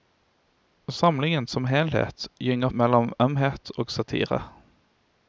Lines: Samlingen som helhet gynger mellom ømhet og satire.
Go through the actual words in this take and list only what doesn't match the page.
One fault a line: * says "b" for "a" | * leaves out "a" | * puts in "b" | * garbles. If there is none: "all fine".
all fine